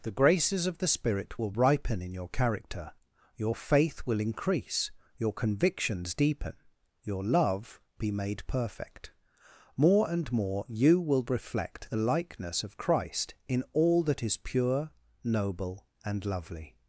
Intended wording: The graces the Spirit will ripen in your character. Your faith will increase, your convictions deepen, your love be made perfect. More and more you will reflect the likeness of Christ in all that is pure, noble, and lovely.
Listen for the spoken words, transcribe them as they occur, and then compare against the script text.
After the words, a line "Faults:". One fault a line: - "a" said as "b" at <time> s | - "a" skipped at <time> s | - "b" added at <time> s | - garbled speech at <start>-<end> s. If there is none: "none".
The graces of the Spirit will ripen in your character. Your faith will increase, your convictions deepen, your love be made perfect. More and more you will reflect the likeness of Christ in all that is pure, noble, and lovely.
Faults:
- "of" added at 0.7 s